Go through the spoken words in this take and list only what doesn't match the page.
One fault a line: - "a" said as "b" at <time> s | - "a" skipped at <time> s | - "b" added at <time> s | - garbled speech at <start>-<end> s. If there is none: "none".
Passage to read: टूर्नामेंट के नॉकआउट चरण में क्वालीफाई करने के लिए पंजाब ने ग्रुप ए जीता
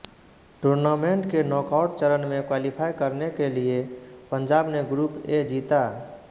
none